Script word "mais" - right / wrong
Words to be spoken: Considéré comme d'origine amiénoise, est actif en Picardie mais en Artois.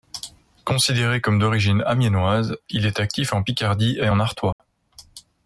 wrong